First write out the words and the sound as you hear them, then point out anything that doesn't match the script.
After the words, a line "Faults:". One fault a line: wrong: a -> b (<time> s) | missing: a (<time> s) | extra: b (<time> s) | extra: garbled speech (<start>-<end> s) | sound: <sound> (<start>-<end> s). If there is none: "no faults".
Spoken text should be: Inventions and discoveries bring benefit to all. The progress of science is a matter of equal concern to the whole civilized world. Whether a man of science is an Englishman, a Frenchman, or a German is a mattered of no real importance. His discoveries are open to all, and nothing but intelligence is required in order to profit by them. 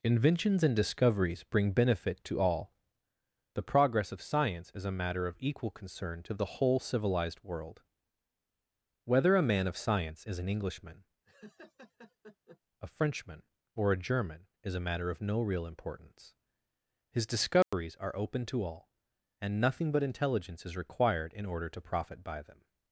Inventions and discoveries bring benefit to all. The progress of science is a matter of equal concern to the whole civilized world. Whether a man of science is an Englishman, a Frenchman, or a German is a matter of no real importance. His discoveries are open to all, and nothing but intelligence is required in order to profit by them.
Faults:
sound: laugh (11.2-12.6 s)
wrong: mattered -> matter (14.9 s)
sound: dropout (17.6-17.7 s)